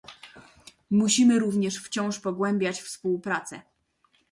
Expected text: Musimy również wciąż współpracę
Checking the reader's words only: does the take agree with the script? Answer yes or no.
no